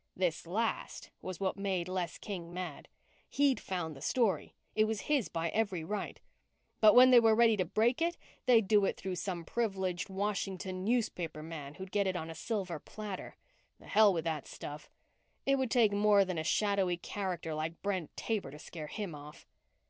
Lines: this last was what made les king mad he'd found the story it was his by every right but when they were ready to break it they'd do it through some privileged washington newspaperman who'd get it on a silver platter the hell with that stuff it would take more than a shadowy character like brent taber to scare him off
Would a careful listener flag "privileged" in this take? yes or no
no